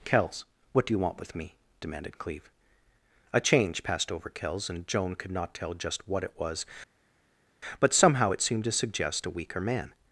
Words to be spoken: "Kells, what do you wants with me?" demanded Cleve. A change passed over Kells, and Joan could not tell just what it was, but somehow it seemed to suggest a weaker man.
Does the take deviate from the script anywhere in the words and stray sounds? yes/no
yes